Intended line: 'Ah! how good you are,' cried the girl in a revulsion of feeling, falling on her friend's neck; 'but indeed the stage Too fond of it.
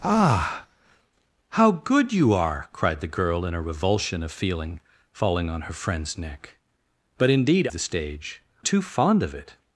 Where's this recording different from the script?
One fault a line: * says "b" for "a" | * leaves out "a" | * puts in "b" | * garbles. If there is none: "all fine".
all fine